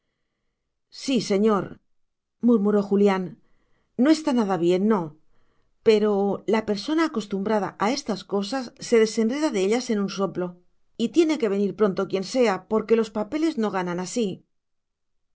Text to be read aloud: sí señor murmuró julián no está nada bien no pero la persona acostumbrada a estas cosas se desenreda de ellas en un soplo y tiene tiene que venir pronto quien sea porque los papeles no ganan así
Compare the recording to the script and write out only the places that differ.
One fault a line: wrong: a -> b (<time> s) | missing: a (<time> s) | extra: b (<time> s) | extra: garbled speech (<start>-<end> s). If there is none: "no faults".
missing: tiene (11.4 s)